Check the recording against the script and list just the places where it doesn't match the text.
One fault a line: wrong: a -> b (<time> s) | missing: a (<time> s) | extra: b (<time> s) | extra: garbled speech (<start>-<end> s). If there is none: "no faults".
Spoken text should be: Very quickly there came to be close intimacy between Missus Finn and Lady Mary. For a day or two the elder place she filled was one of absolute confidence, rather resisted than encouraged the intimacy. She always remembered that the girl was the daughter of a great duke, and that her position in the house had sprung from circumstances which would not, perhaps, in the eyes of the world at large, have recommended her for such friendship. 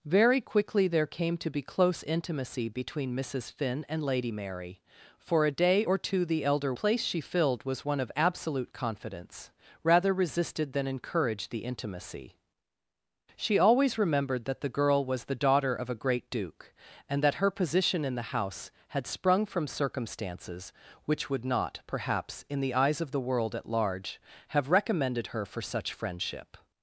no faults